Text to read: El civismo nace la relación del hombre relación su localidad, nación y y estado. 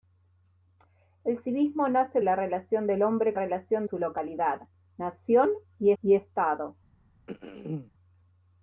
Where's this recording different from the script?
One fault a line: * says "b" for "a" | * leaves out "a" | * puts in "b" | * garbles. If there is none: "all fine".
all fine